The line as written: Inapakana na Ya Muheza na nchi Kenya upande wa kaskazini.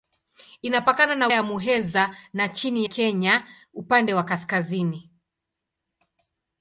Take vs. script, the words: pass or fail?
pass